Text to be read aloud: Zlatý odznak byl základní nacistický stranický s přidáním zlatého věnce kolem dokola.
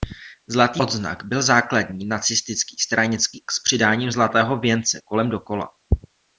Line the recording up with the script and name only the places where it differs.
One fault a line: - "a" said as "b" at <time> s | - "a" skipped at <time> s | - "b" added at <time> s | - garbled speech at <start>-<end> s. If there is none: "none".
none